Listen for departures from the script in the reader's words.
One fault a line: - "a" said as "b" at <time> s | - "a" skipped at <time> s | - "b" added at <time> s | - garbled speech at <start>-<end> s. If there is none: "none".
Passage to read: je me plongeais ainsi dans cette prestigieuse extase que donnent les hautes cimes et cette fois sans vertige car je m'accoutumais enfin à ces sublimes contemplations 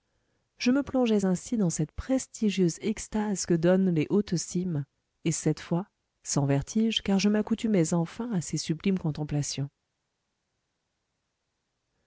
none